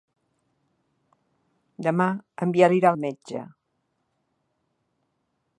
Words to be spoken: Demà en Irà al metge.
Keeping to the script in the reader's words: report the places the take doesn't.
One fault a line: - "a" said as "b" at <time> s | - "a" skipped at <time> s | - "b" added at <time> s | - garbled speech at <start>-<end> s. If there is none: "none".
- "Biel" added at 2.5 s